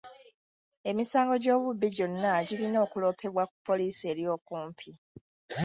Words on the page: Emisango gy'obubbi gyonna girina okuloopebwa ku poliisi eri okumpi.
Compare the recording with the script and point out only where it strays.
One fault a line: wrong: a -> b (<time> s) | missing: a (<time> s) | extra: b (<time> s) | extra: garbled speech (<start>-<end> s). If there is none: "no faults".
no faults